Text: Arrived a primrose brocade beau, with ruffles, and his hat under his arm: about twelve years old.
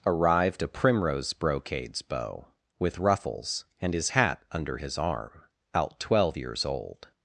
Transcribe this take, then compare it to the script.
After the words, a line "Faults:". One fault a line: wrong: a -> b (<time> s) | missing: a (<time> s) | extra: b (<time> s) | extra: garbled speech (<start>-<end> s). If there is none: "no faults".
Arrived a primrose brocades beau, with ruffles, and his hat under his arm: out twelve years old.
Faults:
wrong: brocade -> brocades (1.3 s)
wrong: about -> out (5.7 s)